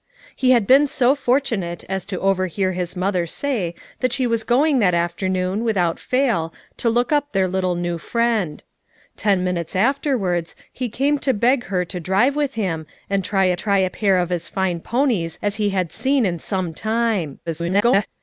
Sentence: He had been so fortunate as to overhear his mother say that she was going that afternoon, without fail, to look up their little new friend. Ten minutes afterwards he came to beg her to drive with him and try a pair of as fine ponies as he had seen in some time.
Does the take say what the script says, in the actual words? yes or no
no